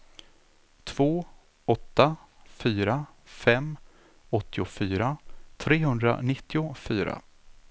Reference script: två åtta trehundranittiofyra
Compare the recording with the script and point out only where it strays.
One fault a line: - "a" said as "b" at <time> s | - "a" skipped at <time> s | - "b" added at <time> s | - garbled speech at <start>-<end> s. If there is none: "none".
- "fyra fem åttiofyra" added at 2.6 s